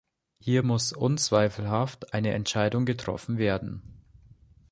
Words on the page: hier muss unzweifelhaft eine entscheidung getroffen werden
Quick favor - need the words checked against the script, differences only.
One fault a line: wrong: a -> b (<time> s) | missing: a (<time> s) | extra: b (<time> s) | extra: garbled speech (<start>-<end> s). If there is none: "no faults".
no faults